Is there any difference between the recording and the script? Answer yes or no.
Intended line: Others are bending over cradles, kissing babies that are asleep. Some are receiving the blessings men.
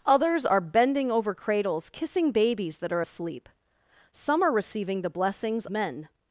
no